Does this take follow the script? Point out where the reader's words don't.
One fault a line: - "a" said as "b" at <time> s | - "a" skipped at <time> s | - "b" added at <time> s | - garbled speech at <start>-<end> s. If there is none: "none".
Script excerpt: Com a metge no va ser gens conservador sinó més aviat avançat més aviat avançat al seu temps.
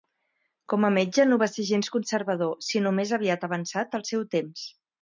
- "més aviat avançat" skipped at 4.0 s